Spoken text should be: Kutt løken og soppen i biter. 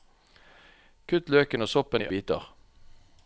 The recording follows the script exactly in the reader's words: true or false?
true